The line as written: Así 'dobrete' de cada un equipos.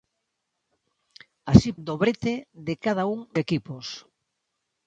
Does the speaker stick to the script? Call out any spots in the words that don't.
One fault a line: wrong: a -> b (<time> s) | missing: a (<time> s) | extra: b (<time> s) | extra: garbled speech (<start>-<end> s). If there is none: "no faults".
no faults